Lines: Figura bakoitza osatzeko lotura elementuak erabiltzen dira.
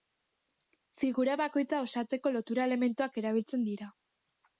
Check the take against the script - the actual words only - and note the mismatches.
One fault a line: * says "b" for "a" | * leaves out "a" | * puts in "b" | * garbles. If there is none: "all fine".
all fine